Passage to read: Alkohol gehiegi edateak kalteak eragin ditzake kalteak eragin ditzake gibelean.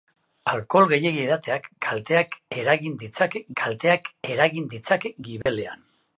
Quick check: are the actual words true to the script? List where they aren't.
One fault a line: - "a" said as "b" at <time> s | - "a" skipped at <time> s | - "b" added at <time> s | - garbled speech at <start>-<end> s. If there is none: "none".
none